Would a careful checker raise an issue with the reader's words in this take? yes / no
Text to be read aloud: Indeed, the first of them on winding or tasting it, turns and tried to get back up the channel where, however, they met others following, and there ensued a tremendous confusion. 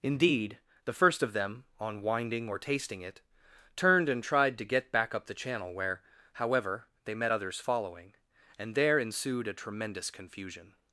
yes